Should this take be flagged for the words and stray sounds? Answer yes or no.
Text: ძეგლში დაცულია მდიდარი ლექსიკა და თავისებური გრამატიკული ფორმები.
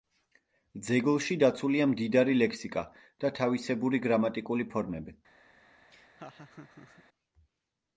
yes